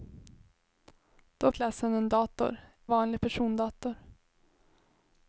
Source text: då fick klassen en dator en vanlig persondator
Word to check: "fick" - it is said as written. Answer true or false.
false